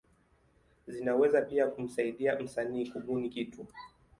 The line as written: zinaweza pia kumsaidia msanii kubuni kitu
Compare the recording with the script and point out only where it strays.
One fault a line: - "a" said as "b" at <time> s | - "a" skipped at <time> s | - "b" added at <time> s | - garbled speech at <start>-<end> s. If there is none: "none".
none